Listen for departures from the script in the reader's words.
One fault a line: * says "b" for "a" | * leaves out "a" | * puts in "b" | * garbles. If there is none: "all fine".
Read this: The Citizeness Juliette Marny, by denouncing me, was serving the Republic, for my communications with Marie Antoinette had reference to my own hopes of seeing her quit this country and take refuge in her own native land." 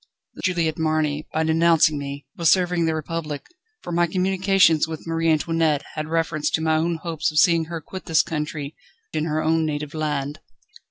* leaves out "Citizeness"
* leaves out "and take refuge"